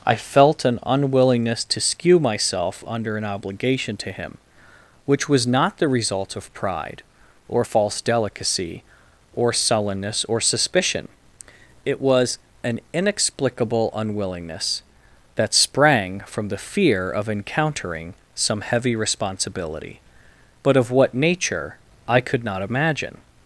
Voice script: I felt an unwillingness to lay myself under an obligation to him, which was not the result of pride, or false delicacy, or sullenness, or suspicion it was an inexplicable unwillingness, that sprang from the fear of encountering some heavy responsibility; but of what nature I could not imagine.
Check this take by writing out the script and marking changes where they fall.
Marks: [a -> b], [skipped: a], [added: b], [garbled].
I felt an unwillingness to [lay -> skew] myself under an obligation to him, which was not the result of pride, or false delicacy, or sullenness, or suspicion it was an inexplicable unwillingness, that sprang from the fear of encountering some heavy responsibility; but of what nature I could not imagine.